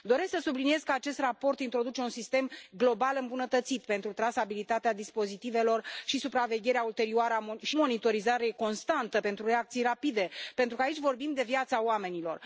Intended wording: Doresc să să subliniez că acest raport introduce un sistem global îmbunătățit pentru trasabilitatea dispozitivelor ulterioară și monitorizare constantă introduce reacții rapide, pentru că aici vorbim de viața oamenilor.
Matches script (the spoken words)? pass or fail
fail